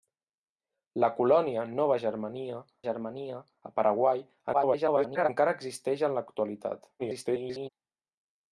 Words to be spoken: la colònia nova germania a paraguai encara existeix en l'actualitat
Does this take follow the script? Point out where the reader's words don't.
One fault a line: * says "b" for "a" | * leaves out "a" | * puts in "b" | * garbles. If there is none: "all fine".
* puts in "germania"
* garbles
* garbles